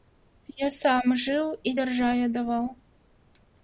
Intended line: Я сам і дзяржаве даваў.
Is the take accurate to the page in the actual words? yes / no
no